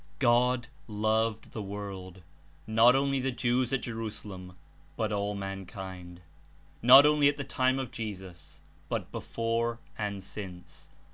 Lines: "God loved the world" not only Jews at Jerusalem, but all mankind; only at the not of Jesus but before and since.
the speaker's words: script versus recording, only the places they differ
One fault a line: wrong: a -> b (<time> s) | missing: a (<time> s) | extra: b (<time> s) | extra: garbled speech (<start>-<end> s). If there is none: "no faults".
extra: the (3.2 s)
extra: not (6.8 s)
wrong: not -> time (7.4 s)